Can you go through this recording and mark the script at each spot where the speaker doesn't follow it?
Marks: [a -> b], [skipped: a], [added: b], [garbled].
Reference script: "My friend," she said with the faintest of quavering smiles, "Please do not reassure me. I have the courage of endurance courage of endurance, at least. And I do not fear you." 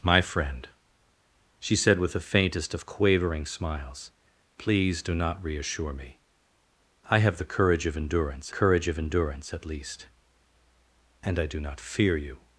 "My friend," she said with the faintest of quavering smiles, "Please do not reassure me. I have the courage of endurance courage of endurance, at least. And I do not fear you."